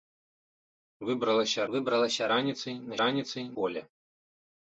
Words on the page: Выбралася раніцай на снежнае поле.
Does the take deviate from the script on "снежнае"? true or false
true